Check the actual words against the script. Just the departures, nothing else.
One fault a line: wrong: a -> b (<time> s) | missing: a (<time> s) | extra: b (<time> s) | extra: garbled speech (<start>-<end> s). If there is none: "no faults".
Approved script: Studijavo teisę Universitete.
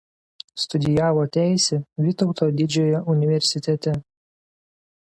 extra: Vytauto Didžiojo (2.0 s)